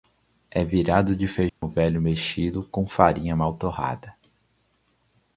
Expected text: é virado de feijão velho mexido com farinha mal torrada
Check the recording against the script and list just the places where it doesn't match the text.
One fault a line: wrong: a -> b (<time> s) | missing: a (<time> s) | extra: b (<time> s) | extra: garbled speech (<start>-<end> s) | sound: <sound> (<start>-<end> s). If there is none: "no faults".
sound: dropout (1.5-1.6 s)